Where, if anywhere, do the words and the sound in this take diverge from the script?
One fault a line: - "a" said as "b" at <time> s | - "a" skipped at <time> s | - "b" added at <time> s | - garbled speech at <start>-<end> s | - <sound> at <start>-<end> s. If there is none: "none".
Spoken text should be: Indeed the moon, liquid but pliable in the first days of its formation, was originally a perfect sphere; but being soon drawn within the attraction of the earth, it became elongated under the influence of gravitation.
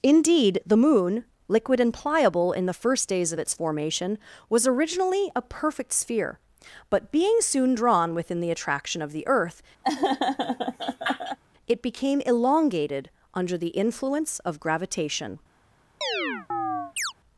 - "but" said as "and" at 1.8 s
- laugh at 9.8-11.4 s
- chirp at 16.0-17.1 s